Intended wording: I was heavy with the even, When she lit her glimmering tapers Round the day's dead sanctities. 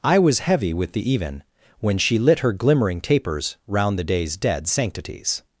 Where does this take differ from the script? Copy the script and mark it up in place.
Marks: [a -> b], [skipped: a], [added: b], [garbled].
I was heavy with the even, When she lit her glimmering tapers Round the day's dead sanctities.